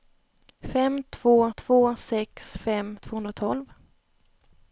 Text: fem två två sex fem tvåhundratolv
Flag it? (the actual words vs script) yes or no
no